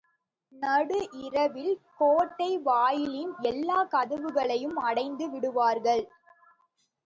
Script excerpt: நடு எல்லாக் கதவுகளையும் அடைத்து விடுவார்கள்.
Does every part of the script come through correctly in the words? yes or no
no